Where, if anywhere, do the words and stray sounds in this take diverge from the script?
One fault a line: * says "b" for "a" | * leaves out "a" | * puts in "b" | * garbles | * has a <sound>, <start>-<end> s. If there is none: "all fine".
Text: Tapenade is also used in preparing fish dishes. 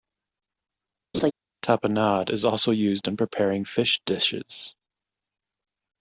* has a laugh, 1.1-1.3 s